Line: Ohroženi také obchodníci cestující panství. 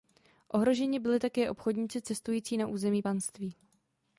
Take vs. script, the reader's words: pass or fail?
fail